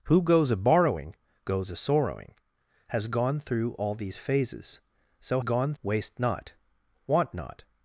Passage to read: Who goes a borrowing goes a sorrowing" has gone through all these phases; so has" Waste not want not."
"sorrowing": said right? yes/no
yes